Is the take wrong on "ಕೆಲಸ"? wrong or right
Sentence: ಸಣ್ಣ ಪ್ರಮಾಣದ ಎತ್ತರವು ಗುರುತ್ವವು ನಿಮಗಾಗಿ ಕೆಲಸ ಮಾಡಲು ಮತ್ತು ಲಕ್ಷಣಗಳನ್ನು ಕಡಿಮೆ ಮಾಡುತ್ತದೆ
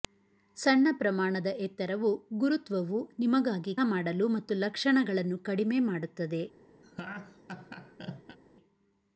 wrong